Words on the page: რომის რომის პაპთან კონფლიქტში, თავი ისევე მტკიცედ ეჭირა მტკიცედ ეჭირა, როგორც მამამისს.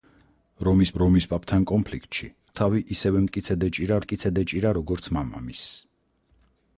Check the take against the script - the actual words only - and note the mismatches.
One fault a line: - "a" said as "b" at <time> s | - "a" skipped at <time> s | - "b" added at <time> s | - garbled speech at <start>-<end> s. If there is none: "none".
none